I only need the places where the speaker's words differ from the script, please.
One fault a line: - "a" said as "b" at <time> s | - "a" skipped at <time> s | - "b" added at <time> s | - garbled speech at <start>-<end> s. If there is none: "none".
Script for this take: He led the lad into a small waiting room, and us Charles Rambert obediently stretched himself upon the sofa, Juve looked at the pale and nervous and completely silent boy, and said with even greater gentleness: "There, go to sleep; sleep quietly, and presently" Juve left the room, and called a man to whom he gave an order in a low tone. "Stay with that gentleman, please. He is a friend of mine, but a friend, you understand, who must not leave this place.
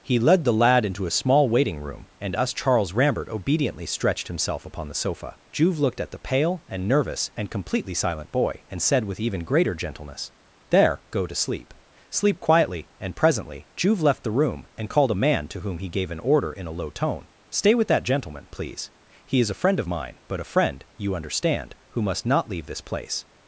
none